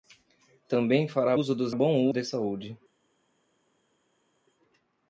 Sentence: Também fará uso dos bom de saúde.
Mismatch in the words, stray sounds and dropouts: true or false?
false